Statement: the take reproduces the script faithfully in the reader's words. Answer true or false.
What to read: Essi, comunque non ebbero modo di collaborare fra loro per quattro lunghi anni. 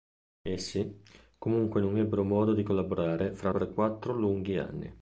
false